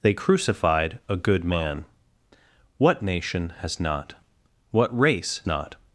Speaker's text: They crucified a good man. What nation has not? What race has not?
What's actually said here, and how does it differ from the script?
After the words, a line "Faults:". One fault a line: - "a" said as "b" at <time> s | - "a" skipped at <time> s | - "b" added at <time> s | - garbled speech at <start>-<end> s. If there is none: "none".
They crucified a good man. What nation has not? What race not?
Faults:
- "has" skipped at 5.4 s